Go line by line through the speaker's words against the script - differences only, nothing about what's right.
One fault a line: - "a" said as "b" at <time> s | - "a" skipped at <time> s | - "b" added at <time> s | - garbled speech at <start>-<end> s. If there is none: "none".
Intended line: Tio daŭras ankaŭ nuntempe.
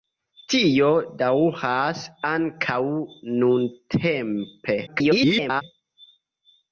- garbled speech at 4.9-5.6 s